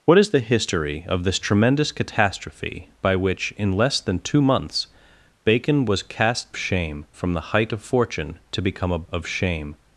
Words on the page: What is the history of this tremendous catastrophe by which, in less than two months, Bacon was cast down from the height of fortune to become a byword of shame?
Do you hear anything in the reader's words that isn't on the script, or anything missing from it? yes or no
yes